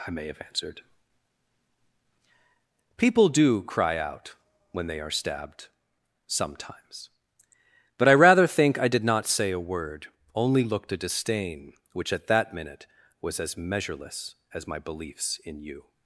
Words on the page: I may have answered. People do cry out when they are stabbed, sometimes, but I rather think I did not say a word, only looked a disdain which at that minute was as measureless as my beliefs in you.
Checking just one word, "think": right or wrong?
right